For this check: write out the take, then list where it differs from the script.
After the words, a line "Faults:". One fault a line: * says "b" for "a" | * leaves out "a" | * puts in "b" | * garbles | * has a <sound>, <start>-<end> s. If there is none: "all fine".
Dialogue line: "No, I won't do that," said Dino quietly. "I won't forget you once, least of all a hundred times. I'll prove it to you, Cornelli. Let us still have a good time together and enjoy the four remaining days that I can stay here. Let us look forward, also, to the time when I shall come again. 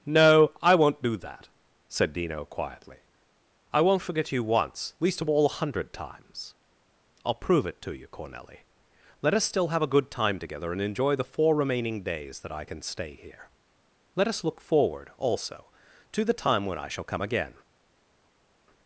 "No, I won't do that," said Dino quietly. "I won't forget you once, least of all a hundred times. I'll prove it to you, Cornelli. Let us still have a good time together and enjoy the four remaining days that I can stay here. Let us look forward, also, to the time when I shall come again.
Faults:
all fine